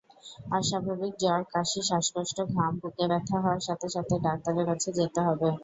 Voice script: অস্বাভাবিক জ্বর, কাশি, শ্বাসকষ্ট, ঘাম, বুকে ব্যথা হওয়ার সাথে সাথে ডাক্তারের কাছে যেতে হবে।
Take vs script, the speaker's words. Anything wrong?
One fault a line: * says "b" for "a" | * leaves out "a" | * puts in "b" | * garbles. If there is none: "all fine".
all fine